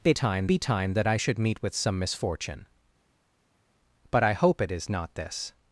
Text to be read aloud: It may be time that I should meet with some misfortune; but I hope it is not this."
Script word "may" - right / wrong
wrong